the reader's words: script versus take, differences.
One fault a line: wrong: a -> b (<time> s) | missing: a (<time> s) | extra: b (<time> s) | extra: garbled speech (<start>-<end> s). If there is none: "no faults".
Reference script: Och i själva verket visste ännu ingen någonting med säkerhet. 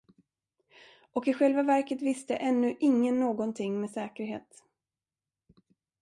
no faults